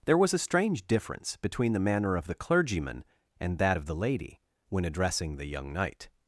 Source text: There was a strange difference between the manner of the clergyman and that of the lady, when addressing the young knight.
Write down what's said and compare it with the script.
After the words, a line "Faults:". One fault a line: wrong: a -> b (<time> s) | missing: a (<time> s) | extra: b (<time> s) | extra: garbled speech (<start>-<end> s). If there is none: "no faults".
There was a strange difference between the manner of the clergyman and that of the lady, when addressing the young knight.
Faults:
no faults